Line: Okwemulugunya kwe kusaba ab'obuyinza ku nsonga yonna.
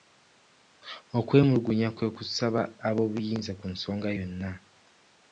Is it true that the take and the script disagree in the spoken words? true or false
false